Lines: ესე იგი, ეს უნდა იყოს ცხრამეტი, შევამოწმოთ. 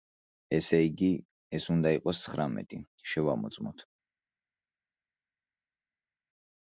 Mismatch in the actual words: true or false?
false